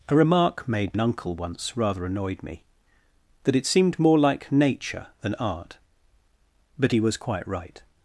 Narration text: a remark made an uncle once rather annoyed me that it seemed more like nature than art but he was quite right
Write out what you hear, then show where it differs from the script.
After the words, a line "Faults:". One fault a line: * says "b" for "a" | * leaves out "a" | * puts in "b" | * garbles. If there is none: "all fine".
a remark made an uncle once rather annoyed me that it seemed more like nature than art but he was quite right
Faults:
all fine